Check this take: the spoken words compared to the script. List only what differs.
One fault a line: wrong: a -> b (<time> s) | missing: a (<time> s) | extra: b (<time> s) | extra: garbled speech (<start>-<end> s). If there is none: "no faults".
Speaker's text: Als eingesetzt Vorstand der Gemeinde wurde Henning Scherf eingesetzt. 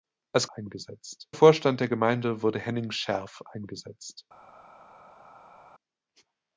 no faults